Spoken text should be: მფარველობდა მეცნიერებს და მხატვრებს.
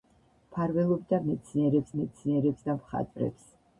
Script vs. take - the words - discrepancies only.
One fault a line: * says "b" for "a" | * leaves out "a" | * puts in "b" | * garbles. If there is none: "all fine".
* puts in "მეცნიერებს"